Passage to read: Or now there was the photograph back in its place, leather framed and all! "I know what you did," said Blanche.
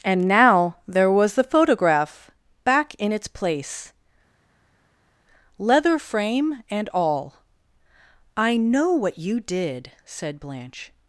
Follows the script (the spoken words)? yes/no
no